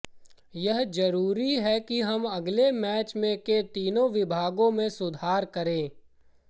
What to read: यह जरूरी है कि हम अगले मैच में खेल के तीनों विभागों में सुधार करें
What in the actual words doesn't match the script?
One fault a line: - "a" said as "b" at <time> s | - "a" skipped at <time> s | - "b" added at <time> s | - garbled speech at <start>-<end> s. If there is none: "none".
- "खेल" skipped at 3.5 s